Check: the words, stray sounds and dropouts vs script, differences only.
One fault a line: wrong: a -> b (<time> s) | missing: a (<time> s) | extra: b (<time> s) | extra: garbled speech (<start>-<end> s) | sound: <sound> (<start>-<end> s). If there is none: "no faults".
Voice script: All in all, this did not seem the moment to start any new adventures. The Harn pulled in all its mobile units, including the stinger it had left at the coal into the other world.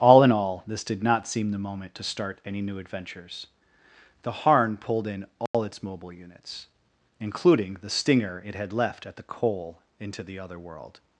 sound: dropout (5.5-5.5 s)